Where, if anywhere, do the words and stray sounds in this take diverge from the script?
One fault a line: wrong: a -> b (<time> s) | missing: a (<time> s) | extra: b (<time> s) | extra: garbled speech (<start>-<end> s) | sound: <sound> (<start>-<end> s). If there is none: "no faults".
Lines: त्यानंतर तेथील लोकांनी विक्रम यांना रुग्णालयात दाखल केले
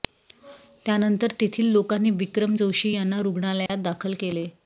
extra: जोशी (2.5 s)
sound: dropout (3.7-3.7 s)